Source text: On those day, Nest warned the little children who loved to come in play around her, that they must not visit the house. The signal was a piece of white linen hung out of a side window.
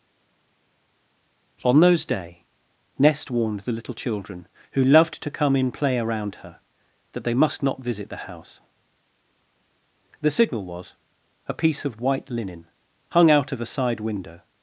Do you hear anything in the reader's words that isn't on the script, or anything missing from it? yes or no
no